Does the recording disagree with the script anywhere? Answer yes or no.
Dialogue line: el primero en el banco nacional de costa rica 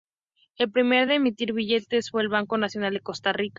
yes